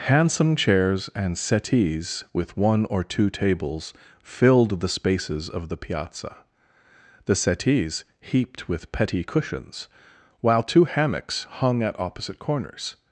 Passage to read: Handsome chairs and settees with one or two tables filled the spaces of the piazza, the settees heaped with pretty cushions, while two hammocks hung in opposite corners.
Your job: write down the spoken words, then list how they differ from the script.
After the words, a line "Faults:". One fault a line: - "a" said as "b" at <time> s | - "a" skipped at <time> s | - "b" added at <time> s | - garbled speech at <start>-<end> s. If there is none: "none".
Handsome chairs and settees with one or two tables filled the spaces of the piazza, the settees heaped with petty cushions, while two hammocks hung at opposite corners.
Faults:
- "pretty" said as "petty" at 8.9 s
- "in" said as "at" at 11.8 s